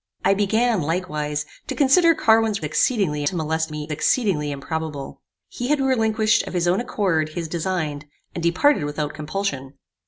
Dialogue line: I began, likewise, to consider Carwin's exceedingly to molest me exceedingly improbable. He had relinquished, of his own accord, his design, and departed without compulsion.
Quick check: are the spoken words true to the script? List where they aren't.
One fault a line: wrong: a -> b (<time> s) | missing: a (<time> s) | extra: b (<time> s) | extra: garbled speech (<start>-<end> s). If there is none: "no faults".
no faults